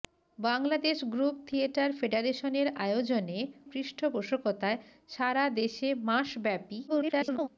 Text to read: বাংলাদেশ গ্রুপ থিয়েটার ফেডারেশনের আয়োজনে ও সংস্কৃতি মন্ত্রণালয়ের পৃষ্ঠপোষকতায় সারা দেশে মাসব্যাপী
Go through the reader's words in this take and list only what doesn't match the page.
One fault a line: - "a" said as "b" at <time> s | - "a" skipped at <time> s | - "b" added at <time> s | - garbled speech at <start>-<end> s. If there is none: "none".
- "ও সংস্কৃতি মন্ত্রণালয়ের" skipped at 3.4 s
- garbled speech at 6.9-7.5 s